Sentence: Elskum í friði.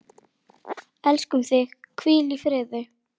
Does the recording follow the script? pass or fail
fail